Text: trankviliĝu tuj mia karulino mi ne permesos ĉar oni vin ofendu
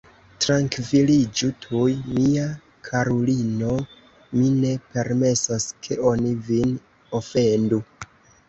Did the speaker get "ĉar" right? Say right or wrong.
wrong